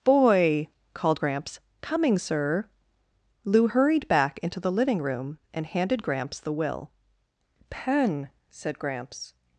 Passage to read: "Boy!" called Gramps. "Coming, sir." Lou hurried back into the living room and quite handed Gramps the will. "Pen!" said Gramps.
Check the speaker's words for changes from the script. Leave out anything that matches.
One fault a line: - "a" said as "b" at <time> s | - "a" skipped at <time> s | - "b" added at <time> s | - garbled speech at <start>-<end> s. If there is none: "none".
- "quite" skipped at 5.7 s